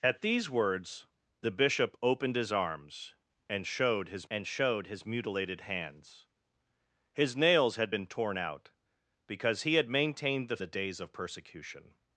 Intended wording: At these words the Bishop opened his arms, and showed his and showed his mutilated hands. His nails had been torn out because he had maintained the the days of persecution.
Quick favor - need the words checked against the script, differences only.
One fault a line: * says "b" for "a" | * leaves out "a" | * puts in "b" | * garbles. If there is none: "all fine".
all fine